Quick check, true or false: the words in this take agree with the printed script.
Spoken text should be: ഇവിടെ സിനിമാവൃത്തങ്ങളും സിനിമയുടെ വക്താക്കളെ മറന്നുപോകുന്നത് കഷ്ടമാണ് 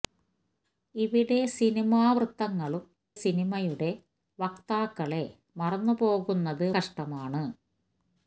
true